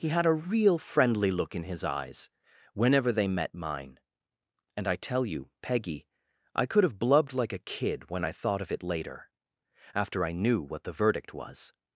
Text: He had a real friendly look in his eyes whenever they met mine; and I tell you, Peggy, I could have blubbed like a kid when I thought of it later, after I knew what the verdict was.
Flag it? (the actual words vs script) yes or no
no